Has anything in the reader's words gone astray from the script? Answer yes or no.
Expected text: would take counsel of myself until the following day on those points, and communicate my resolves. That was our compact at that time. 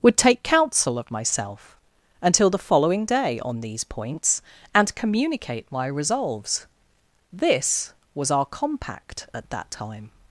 yes